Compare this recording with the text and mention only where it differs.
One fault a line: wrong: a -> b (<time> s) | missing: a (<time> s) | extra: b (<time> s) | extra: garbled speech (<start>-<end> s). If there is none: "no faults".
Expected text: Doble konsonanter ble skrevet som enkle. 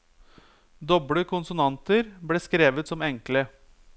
no faults